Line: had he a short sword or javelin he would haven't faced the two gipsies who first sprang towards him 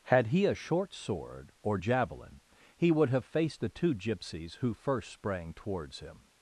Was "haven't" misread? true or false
true